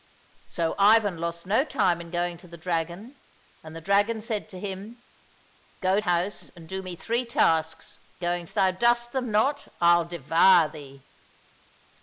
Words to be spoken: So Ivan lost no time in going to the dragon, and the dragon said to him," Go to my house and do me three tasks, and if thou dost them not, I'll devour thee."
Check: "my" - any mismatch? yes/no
yes